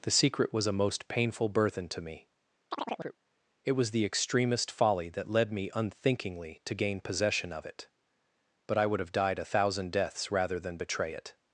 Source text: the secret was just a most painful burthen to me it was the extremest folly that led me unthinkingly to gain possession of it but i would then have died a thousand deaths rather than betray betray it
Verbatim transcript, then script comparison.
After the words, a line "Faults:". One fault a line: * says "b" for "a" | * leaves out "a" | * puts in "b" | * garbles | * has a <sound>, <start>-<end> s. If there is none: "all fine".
the secret was a most painful burthen to me it was the extremest folly that led me unthinkingly to gain possession of it but i would have died a thousand deaths rather than betray it
Faults:
* leaves out "just"
* has a chirp, 2.7-3.2 s
* leaves out "then"
* leaves out "betray"